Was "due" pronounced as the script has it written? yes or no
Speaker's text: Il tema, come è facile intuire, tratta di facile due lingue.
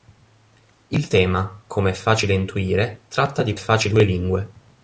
yes